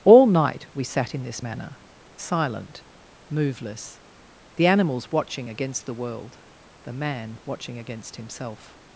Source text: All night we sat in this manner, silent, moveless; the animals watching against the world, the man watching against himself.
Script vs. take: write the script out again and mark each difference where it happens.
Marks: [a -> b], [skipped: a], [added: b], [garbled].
All night we sat in this manner, silent, moveless; the animals watching against the world, the man watching against himself.